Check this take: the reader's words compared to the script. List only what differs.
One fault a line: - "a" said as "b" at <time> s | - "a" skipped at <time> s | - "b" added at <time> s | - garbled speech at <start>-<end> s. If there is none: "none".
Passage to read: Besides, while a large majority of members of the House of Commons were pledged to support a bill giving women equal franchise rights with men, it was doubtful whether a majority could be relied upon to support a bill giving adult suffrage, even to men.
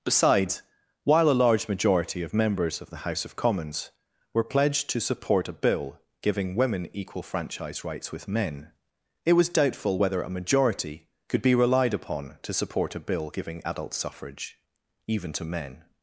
none